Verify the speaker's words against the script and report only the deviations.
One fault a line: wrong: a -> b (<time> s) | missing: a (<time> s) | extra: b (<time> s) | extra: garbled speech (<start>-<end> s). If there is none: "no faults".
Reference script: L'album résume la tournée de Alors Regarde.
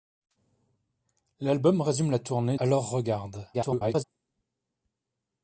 missing: de (2.6 s)
extra: garbled speech (3.5-4.0 s)